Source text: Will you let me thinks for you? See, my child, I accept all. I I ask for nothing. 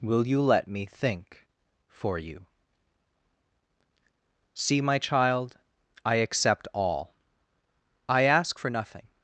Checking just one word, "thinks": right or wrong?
wrong